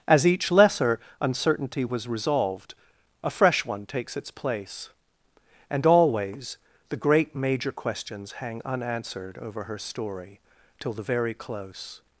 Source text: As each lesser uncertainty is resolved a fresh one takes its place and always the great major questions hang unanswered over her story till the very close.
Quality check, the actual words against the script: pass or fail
fail